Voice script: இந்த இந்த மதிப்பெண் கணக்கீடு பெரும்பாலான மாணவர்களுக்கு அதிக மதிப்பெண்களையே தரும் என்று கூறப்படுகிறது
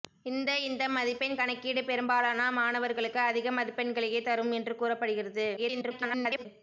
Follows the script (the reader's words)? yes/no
no